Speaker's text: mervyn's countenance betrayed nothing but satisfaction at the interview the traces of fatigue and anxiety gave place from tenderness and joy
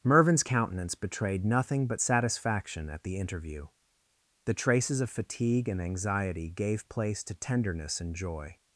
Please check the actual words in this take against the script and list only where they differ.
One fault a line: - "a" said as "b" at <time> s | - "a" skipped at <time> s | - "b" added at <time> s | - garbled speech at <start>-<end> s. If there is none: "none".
- "from" said as "to" at 7.2 s